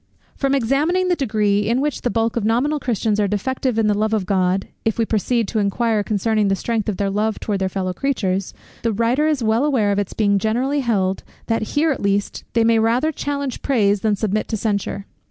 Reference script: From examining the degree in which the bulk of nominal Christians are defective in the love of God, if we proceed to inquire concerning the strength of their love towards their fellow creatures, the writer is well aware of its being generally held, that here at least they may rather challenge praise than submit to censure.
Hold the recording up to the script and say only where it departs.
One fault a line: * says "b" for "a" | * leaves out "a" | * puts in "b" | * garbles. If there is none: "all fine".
all fine